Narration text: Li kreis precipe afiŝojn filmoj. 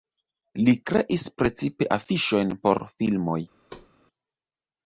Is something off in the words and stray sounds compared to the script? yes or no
yes